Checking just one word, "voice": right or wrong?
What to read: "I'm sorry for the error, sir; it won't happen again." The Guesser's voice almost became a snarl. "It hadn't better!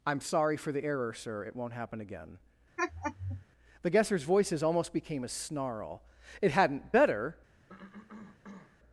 wrong